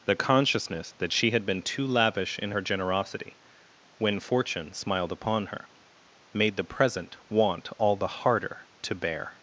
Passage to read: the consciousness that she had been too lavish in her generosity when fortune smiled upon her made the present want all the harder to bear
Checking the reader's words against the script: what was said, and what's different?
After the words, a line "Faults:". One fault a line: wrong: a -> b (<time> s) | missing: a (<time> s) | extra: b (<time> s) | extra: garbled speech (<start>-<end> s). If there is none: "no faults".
the consciousness that she had been too lavish in her generosity when fortune smiled upon her made the present want all the harder to bear
Faults:
no faults